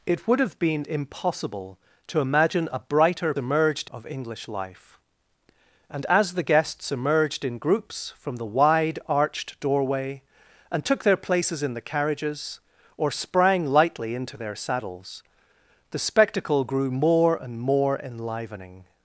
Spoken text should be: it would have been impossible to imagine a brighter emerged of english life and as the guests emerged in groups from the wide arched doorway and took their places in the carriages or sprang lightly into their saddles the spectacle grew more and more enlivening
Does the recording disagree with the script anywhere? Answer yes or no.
no